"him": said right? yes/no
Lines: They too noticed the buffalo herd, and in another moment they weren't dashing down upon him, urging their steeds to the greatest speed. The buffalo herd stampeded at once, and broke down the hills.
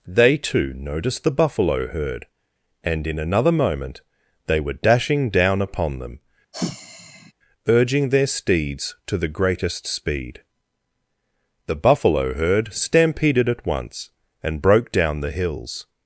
no